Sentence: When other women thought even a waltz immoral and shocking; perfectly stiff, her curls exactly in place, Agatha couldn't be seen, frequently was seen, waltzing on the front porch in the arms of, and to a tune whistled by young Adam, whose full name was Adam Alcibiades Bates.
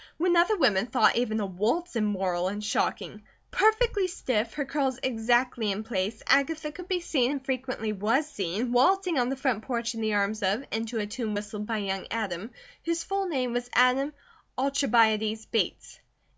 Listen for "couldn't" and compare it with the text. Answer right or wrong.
wrong